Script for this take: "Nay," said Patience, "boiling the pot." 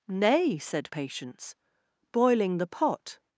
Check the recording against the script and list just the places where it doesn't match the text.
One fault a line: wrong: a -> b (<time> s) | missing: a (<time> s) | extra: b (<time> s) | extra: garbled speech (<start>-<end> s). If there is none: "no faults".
no faults